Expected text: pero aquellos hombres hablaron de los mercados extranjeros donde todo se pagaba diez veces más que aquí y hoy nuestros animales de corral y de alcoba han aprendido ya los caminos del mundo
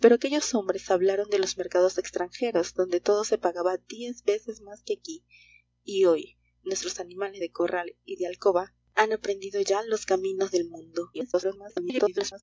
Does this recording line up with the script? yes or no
no